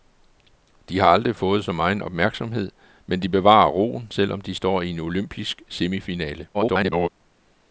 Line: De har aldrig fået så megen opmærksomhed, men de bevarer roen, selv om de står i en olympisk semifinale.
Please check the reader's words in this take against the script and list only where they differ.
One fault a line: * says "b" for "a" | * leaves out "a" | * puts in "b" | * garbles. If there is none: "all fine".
* garbles